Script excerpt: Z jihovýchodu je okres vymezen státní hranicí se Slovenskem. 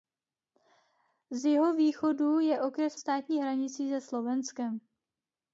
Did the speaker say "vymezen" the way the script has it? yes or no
no